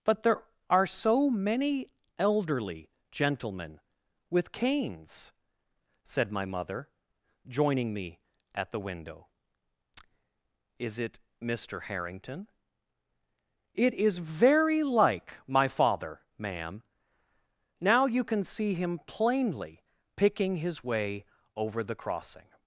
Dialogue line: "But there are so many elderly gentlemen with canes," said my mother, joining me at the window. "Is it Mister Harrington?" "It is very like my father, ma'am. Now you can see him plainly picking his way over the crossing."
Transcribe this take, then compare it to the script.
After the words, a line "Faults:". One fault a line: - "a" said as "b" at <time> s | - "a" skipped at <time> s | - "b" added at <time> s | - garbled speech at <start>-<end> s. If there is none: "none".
"But there are so many elderly gentlemen with canes," said my mother, joining me at the window. "Is it Mister Harrington?" "It is very like my father, ma'am. Now you can see him plainly picking his way over the crossing."
Faults:
none